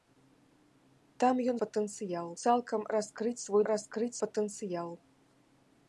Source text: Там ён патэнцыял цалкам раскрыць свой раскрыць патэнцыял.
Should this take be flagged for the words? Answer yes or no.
no